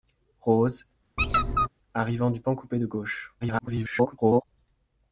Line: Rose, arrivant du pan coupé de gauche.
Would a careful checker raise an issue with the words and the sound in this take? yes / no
yes